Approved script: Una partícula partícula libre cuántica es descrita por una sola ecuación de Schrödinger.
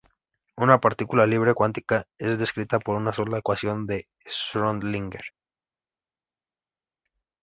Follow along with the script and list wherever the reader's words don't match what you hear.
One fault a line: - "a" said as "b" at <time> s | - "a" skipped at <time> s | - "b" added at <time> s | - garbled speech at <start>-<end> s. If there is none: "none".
- "partícula" skipped at 1.3 s